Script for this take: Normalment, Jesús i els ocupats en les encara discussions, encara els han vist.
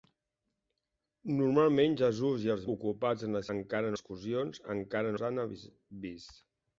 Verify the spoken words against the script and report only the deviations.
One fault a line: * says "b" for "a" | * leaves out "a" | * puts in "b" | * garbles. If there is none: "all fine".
all fine